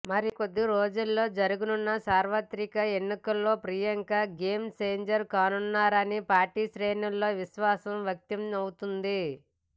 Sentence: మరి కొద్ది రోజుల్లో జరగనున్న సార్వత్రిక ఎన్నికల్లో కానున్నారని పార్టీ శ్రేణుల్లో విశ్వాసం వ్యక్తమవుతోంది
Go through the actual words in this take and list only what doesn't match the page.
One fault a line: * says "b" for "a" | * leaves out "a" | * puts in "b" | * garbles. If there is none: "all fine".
* puts in "ప్రియాంక గేమ్ ఛేంజర్"